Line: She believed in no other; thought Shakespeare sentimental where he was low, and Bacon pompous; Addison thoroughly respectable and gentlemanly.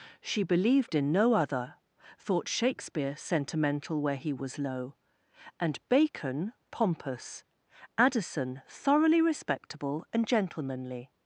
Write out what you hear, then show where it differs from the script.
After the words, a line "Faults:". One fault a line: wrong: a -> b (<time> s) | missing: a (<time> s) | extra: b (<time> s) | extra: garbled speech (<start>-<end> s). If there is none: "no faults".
She believed in no other; thought Shakespeare sentimental where he was low, and Bacon pompous; Addison thoroughly respectable and gentlemanly.
Faults:
no faults